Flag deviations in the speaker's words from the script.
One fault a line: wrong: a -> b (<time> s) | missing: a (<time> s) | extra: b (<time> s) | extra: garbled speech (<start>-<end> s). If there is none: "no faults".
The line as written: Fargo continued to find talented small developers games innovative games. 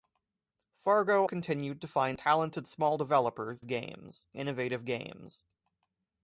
no faults